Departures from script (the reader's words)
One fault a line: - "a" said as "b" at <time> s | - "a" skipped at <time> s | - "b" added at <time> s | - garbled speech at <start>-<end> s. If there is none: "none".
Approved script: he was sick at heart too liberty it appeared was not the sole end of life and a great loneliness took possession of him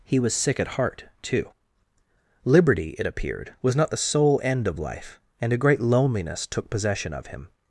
none